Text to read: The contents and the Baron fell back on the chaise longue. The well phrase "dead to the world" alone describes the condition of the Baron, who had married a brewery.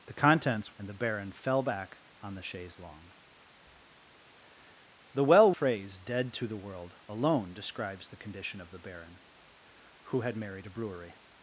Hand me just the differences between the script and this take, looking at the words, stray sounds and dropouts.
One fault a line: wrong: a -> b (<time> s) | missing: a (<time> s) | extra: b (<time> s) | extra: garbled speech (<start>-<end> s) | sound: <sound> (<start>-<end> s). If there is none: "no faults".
no faults